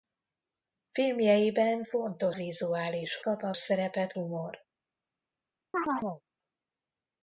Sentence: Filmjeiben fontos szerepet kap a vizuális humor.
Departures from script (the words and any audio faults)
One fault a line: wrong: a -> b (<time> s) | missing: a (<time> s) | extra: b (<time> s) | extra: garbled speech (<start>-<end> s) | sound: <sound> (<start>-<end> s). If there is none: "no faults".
wrong: szerepet -> vizuális (2.3 s)
wrong: vizuális -> szerepet (3.6 s)
sound: chirp (5.7-6.2 s)